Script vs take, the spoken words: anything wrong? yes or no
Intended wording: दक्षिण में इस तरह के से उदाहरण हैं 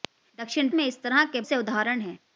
no